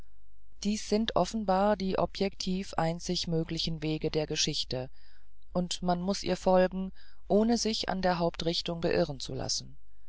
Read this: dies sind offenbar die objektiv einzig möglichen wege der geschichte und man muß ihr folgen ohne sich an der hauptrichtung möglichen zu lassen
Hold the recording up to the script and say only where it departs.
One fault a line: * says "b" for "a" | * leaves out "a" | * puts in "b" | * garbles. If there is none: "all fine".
* says "beirren" for "möglichen"